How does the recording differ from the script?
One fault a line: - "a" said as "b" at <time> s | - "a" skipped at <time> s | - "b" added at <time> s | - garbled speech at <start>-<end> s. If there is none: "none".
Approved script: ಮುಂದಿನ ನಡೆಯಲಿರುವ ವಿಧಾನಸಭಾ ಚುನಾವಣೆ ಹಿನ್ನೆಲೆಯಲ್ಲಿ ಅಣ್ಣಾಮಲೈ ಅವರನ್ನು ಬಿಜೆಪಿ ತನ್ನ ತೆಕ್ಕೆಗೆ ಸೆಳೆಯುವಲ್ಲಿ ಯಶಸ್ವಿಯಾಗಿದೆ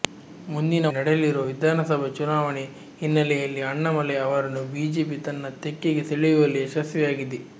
none